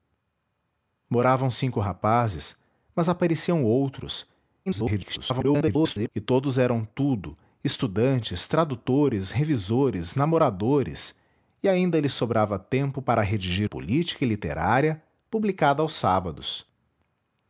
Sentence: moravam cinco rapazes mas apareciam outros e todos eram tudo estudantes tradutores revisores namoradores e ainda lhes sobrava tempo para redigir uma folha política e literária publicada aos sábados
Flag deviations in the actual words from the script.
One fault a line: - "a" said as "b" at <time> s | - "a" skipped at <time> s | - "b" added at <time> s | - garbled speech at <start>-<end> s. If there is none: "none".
- garbled speech at 4.7-6.1 s
- "uma folha" skipped at 13.7 s